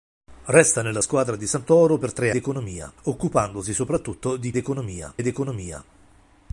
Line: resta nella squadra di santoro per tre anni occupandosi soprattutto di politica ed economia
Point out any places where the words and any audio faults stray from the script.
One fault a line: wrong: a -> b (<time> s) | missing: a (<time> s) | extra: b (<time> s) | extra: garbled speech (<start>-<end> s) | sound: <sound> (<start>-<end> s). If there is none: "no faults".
wrong: anni -> economia (2.3 s)
wrong: politica -> economia (4.6 s)